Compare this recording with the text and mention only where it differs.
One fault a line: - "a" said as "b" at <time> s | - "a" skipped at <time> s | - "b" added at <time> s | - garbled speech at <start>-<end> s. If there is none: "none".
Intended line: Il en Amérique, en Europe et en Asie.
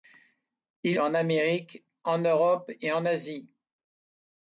none